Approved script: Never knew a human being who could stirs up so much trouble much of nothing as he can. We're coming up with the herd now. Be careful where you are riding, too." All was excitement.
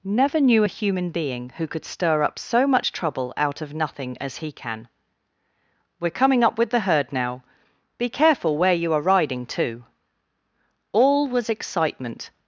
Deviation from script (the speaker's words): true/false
true